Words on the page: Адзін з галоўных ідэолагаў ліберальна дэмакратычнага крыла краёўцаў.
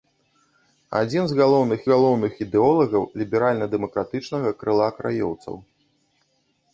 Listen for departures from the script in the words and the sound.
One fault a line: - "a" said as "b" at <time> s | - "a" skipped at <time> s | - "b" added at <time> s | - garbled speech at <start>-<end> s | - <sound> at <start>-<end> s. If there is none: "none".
- "галоўных" added at 1.9 s